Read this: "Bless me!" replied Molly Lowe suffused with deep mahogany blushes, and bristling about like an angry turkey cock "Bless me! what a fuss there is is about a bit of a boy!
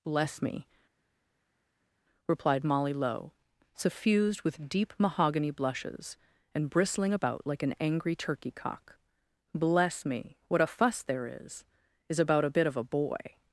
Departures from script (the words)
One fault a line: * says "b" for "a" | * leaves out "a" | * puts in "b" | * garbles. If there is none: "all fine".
all fine